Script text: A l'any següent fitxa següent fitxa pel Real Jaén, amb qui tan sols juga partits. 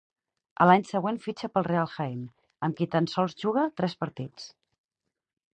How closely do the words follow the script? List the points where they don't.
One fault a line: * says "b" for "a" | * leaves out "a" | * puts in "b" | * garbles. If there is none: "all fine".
* leaves out "següent fitxa"
* puts in "tres"